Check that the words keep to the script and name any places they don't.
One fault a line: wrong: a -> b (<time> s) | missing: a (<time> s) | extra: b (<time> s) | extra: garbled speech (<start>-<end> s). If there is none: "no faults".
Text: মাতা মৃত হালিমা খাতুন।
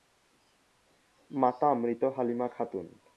no faults